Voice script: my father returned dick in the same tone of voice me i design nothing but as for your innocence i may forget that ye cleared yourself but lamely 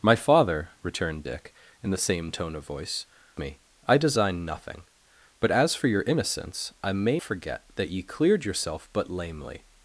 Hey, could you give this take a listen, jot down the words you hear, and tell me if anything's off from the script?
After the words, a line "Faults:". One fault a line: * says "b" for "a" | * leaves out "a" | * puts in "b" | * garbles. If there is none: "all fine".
my father returned dick in the same tone of voice me i design nothing but as for your innocence i may forget that ye cleared yourself but lamely
Faults:
all fine